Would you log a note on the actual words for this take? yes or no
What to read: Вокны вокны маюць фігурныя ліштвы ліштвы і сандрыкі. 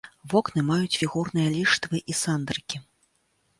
yes